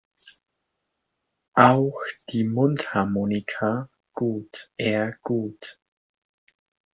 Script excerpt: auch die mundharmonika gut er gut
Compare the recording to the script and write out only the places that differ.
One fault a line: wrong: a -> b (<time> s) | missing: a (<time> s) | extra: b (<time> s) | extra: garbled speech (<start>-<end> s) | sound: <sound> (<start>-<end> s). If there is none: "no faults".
no faults